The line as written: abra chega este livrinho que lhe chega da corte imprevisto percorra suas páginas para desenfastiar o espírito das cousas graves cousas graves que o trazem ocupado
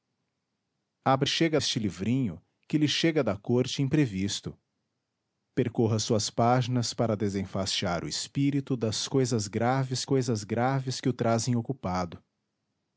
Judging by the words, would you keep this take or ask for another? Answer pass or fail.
pass